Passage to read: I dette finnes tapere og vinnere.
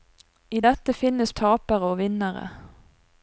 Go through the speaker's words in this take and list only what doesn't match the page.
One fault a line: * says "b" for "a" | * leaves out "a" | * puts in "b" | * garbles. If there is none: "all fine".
all fine